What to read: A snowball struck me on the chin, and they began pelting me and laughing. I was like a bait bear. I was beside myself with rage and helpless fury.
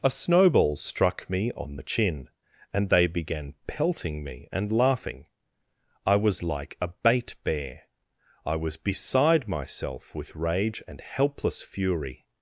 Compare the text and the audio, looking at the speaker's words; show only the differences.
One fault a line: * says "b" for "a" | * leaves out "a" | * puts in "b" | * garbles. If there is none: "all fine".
all fine